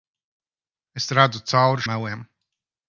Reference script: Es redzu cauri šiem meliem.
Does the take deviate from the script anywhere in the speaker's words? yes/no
yes